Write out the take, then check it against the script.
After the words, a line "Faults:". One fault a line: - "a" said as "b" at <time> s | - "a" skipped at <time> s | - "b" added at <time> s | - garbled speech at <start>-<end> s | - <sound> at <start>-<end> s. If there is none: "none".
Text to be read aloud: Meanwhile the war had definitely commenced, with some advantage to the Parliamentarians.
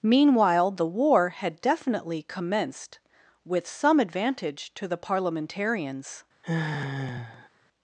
Meanwhile the war had definitely commenced, with some advantage to the Parliamentarians.
Faults:
- sigh at 6.4-7.5 s